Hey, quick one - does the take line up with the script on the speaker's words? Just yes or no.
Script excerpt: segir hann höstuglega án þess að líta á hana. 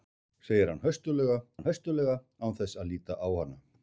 no